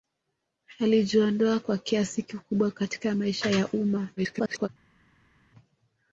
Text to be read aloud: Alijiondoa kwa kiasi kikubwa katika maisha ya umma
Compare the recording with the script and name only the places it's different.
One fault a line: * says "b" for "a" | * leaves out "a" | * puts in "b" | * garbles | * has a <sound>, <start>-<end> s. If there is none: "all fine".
* garbles